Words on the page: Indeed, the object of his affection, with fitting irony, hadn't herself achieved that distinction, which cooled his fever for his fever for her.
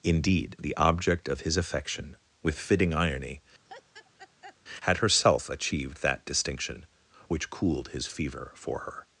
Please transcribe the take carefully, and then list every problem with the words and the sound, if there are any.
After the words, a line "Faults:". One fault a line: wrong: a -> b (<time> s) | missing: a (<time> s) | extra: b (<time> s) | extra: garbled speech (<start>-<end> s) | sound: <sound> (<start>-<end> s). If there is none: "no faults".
Indeed, the object of his affection, with fitting irony, had herself achieved that distinction, which cooled his fever for her.
Faults:
sound: laugh (3.6-4.6 s)
wrong: hadn't -> had (4.8 s)
missing: his fever for (8.8 s)